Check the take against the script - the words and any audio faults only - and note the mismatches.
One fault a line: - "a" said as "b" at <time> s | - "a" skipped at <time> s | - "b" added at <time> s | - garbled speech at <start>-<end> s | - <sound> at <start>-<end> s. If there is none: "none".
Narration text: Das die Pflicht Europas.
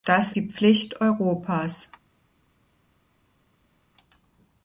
none